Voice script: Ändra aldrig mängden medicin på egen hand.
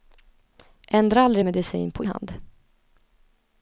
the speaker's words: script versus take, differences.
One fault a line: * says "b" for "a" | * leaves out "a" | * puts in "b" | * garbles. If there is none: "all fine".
* leaves out "mängden"
* leaves out "egen"